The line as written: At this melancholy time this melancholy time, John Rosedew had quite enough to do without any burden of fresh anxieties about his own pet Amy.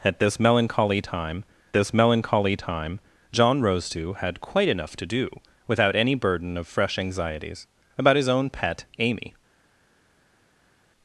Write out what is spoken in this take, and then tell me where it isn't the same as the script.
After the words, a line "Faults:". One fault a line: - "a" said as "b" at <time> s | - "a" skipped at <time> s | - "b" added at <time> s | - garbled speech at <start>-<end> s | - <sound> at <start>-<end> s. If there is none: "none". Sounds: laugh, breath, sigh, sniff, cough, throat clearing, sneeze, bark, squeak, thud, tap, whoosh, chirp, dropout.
At this melancholy time this melancholy time, John Rosedew had quite enough to do without any burden of fresh anxieties about his own pet Amy.
Faults:
none